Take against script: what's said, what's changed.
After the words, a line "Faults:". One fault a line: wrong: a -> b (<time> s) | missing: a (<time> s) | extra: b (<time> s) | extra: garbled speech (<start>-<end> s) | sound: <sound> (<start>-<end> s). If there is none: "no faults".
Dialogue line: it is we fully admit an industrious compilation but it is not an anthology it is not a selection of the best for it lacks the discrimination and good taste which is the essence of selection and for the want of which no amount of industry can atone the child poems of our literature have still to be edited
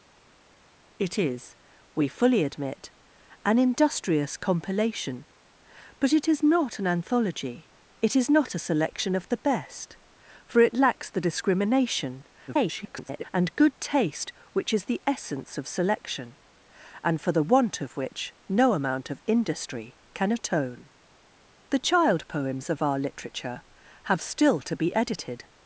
it is we fully admit an industrious compilation but it is not an anthology it is not a selection of the best for it lacks the discrimination [garbled] and good taste which is the essence of selection and for the want of which no amount of industry can atone the child poems of our literature have still to be edited
Faults:
extra: garbled speech (12.5-13.2 s)